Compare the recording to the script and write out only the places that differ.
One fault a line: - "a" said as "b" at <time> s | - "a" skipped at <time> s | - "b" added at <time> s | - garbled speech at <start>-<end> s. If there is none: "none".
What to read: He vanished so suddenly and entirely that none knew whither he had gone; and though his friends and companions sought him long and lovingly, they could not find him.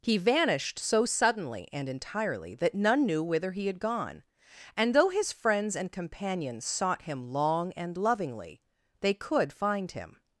- "not" skipped at 9.5 s